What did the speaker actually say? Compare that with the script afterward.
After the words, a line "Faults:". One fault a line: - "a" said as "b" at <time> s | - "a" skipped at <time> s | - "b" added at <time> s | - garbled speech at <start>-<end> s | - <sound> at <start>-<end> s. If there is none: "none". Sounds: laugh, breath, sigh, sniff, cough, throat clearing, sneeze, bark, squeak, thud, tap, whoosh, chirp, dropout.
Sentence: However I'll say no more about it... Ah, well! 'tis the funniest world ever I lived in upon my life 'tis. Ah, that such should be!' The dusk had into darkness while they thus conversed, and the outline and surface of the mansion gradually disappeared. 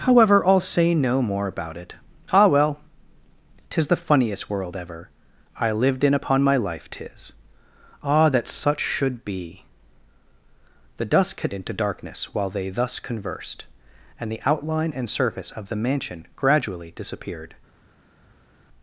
However I'll say no more about it... Ah, well! 'tis the funniest world ever I lived in upon my life 'tis. Ah, that such should be!' The dusk had into darkness while they thus conversed, and the outline and surface of the mansion gradually disappeared.
Faults:
none